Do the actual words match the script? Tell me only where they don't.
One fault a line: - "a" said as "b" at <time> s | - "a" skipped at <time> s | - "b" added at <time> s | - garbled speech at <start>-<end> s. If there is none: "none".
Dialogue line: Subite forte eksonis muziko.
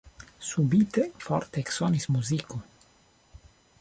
none